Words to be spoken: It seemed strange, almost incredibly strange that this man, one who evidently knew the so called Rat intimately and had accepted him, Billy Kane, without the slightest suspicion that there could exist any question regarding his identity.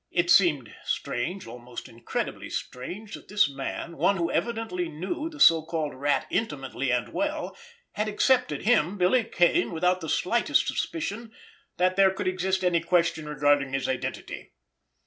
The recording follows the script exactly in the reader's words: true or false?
false